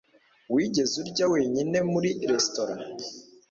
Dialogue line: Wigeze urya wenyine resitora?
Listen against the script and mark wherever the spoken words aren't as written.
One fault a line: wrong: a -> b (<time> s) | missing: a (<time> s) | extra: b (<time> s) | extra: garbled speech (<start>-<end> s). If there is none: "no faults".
extra: muri (1.9 s)